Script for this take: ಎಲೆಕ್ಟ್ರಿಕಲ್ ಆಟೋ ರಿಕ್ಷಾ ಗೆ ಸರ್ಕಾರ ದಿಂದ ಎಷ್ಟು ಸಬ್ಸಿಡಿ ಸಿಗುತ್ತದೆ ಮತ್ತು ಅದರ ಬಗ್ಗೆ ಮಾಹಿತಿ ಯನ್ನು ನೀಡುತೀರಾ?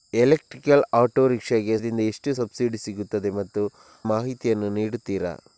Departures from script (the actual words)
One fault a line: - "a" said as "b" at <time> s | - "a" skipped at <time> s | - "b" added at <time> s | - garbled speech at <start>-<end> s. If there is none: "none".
- "ಸರ್ಕಾರ" skipped at 1.8 s
- "ಅದರ ಬಗ್ಗೆ" skipped at 3.6 s